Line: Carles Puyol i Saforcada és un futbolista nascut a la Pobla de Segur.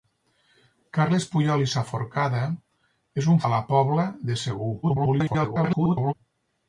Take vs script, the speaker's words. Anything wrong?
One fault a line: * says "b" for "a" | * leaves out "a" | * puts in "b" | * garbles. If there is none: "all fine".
* leaves out "futbolista nascut"
* garbles